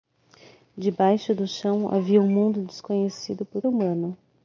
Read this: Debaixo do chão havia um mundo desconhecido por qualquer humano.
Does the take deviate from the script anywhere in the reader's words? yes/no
yes